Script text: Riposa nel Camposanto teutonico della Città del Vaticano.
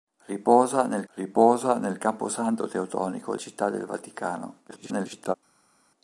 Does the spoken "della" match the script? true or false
false